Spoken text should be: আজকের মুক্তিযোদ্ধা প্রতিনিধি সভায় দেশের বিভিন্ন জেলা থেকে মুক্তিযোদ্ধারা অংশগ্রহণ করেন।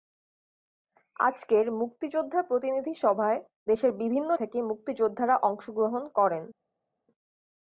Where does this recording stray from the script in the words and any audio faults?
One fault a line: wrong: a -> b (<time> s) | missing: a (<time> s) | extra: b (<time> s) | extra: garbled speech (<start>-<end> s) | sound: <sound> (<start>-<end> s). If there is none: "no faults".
missing: জেলা (4.3 s)